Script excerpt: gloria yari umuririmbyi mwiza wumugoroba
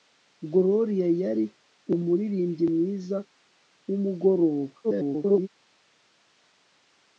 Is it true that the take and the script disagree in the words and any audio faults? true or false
true